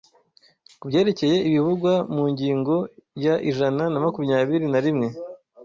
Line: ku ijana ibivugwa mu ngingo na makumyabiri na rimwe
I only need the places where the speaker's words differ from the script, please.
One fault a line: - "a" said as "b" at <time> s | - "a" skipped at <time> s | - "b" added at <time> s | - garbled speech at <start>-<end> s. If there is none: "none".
- "ijana" said as "byerekeye" at 0.9 s
- "ya ijana" added at 3.2 s